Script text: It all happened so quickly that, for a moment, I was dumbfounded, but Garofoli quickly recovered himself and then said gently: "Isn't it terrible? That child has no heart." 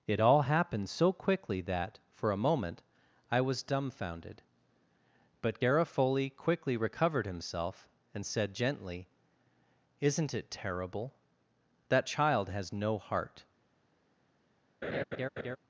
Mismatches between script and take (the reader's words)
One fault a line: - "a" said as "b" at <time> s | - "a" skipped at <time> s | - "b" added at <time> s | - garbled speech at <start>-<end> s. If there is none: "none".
- "then" skipped at 8.2 s